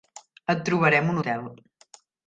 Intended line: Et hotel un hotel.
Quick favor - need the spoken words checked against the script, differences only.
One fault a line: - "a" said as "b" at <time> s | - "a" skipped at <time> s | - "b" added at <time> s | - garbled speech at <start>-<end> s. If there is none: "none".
- "hotel" said as "trobarem" at 0.7 s